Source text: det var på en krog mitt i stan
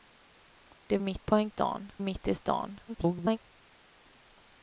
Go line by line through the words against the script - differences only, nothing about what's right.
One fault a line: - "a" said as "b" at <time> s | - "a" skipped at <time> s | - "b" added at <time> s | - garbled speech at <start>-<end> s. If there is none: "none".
- "var" said as "mitt" at 1.0 s
- "krog" said as "stan" at 1.5 s
- garbled speech at 2.9-3.4 s